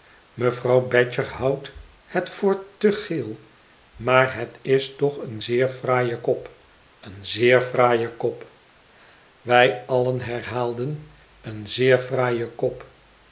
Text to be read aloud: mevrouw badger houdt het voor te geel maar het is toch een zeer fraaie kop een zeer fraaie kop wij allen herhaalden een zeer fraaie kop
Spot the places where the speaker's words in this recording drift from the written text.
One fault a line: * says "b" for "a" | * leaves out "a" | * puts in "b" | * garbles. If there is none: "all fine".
all fine